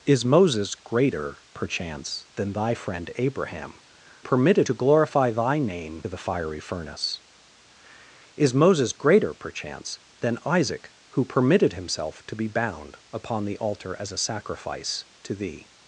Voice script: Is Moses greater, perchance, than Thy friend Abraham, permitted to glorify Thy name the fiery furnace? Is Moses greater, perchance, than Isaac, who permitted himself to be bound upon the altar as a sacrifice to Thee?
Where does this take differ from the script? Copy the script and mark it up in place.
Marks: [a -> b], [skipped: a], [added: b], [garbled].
Is Moses greater, perchance, than Thy friend Abraham, permitted to glorify Thy name the fiery furnace? Is Moses greater, perchance, than Isaac, who permitted himself to be bound upon the altar as a sacrifice to Thee?